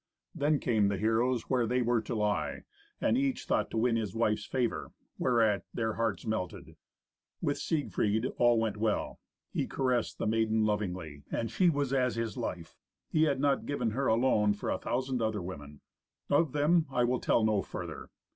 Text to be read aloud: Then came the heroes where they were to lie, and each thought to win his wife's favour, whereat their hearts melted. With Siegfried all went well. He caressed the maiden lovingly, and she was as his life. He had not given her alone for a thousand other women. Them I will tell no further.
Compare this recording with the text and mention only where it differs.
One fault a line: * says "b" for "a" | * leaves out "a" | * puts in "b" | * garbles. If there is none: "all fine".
* puts in "Of"